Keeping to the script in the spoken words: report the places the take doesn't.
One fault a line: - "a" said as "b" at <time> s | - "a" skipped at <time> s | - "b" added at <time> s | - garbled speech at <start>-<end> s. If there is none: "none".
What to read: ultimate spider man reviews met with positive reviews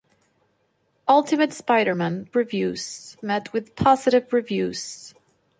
none